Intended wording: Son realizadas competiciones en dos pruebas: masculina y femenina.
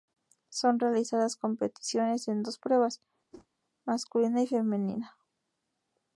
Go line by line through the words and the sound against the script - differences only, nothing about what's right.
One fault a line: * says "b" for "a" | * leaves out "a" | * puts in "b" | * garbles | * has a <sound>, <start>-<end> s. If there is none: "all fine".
* has a whoosh, 3.3-3.5 s